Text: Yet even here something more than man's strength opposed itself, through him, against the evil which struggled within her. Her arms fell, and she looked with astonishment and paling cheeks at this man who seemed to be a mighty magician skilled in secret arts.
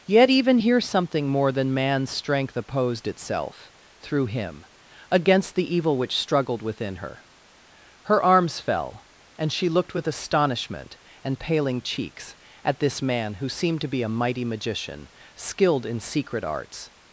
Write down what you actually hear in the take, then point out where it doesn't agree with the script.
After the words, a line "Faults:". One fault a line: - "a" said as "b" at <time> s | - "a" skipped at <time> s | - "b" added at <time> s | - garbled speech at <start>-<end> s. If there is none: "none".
Yet even here something more than man's strength opposed itself, through him, against the evil which struggled within her. Her arms fell, and she looked with astonishment and paling cheeks at this man who seemed to be a mighty magician skilled in secret arts.
Faults:
none